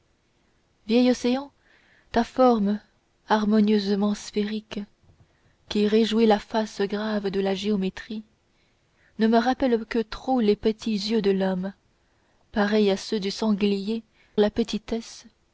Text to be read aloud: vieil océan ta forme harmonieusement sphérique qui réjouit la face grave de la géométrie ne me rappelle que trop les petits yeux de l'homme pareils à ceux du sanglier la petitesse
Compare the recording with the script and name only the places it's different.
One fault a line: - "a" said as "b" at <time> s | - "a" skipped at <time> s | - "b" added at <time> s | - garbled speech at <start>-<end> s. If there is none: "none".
none